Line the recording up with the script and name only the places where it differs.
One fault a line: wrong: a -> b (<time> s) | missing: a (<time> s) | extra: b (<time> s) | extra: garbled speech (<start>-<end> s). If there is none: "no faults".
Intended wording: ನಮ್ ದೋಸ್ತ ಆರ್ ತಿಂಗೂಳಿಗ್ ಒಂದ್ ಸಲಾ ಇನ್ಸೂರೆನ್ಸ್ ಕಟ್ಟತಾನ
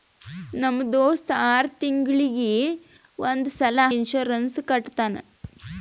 no faults